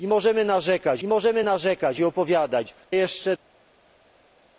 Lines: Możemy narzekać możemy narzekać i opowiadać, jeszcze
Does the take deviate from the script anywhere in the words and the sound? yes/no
no